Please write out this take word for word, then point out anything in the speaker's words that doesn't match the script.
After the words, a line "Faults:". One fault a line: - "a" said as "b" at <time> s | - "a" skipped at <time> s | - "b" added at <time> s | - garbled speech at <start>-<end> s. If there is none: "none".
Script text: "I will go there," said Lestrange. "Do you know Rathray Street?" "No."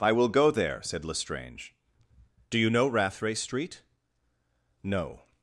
"I will go there," said Lestrange. "Do you know Rathray Street?" "No."
Faults:
none